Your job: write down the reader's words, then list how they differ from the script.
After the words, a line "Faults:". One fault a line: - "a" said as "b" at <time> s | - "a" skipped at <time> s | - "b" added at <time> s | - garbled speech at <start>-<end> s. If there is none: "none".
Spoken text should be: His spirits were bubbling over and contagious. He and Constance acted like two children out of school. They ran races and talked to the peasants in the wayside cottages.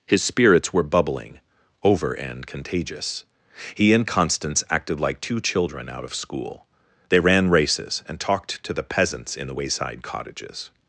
His spirits were bubbling over and contagious. He and Constance acted like two children out of school. They ran races and talked to the peasants in the wayside cottages.
Faults:
none